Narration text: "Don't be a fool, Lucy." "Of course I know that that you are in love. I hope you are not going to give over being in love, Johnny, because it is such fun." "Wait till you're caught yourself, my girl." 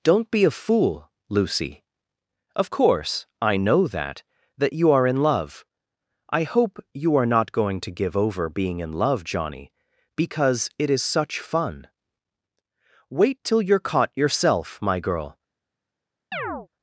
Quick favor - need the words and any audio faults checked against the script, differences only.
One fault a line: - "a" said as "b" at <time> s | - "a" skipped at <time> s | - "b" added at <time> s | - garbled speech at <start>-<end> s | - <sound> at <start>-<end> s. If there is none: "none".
- chirp at 16.3-16.7 s